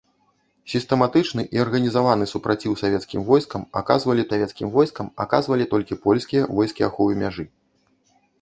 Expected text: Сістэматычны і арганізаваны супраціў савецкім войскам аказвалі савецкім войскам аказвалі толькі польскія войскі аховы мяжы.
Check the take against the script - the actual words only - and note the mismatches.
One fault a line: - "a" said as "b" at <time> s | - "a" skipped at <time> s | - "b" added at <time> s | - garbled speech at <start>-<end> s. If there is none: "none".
none